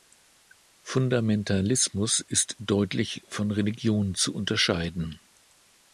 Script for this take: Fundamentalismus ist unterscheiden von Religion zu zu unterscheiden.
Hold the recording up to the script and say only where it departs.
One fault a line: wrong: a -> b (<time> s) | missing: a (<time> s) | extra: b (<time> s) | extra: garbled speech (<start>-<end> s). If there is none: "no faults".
wrong: unterscheiden -> deutlich (2.6 s)
missing: zu (4.3 s)